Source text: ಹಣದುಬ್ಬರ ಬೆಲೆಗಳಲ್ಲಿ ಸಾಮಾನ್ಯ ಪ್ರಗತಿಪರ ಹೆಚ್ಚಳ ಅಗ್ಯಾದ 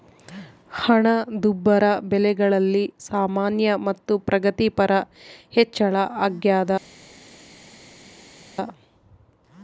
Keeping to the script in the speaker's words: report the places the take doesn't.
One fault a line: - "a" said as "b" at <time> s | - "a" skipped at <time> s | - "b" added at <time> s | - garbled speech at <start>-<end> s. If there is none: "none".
- "ಮತ್ತು" added at 3.9 s